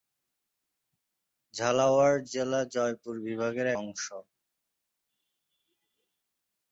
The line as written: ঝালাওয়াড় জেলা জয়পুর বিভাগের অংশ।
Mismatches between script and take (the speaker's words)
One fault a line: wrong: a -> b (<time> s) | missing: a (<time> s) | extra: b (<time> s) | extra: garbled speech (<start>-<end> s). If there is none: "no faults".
no faults